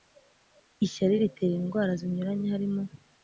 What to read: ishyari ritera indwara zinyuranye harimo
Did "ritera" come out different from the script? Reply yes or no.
no